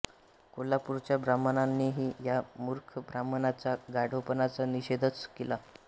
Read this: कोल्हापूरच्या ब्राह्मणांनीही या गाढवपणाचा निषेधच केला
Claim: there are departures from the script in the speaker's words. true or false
true